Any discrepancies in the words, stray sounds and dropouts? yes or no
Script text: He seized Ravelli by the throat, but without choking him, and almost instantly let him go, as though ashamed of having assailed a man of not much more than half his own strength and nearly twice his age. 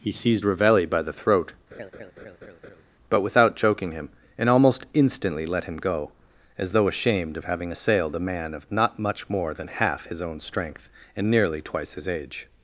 yes